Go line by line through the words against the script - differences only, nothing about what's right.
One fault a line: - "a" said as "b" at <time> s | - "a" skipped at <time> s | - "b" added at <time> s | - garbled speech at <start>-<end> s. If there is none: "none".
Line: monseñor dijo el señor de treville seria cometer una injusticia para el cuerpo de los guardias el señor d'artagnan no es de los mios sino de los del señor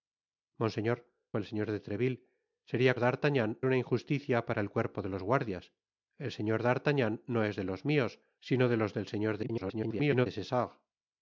- "dijo" skipped at 1.1 s
- "cometer" said as "d'artagnan" at 3.0 s
- garbled speech at 9.4-10.3 s